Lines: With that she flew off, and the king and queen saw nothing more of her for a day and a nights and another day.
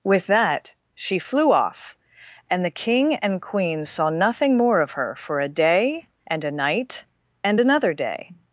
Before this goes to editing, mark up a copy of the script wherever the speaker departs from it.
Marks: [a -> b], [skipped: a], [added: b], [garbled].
With that she flew off, and the king and queen saw nothing more of her for a day and a [nights -> night] and another day.